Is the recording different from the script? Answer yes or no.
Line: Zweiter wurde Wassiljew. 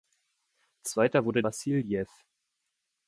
no